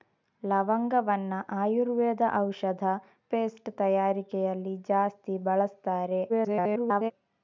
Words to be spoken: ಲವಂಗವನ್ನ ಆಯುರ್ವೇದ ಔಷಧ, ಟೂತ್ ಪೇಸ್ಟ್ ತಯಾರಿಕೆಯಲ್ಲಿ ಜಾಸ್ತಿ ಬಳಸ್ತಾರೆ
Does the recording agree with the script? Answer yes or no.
no